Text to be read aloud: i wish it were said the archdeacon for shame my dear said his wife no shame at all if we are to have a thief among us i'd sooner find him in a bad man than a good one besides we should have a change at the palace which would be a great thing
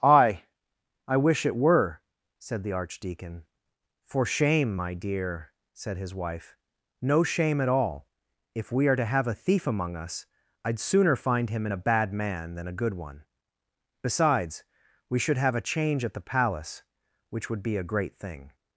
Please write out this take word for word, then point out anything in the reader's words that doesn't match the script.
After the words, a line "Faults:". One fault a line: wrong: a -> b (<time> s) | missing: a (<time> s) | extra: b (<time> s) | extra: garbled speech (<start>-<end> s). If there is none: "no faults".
aye i wish it were said the archdeacon for shame my dear said his wife no shame at all if we are to have a thief among us i'd sooner find him in a bad man than a good one besides we should have a change at the palace which would be a great thing
Faults:
extra: aye (0.0 s)